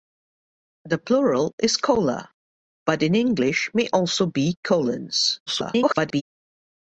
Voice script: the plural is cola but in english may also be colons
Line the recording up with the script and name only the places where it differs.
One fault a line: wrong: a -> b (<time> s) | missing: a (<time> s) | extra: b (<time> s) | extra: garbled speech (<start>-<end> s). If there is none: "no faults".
extra: garbled speech (5.5-6.2 s)